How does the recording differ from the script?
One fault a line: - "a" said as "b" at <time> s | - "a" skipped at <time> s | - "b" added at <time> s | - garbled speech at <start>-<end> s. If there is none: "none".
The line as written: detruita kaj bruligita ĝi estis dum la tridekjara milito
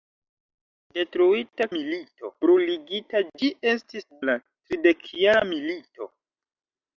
- "kaj" said as "milito" at 1.8 s
- "dum" skipped at 4.1 s